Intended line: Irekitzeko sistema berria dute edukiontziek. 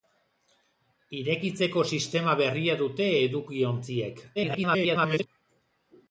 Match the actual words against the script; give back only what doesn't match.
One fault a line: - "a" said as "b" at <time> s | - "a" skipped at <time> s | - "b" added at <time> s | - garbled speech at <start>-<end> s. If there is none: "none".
- garbled speech at 4.4-5.3 s